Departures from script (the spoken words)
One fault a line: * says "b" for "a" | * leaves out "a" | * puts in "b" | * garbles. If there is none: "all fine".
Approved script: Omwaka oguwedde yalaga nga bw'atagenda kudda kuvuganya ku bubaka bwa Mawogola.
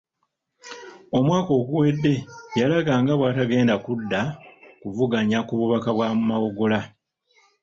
all fine